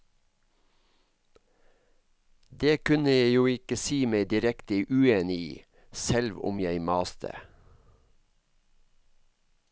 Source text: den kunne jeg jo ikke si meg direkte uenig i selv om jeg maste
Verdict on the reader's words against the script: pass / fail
fail